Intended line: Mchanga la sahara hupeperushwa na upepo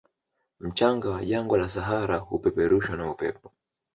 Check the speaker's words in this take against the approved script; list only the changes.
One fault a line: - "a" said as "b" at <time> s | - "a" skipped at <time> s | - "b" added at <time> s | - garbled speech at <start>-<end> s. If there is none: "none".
- "wa jangwa" added at 1.1 s